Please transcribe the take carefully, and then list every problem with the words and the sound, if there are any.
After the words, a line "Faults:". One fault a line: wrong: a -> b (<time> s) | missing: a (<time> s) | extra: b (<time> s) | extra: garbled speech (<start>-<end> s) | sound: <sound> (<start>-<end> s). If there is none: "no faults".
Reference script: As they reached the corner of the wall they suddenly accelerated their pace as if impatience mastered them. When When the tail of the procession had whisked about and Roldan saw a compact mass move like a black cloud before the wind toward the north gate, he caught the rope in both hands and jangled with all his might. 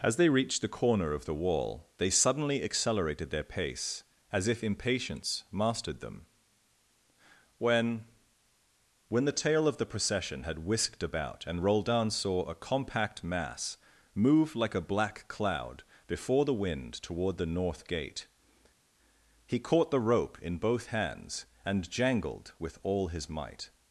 As they reached the corner of the wall they suddenly accelerated their pace as if impatience mastered them. When When the tail of the procession had whisked about and Roldan saw a compact mass move like a black cloud before the wind toward the north gate, he caught the rope in both hands and jangled with all his might.
Faults:
no faults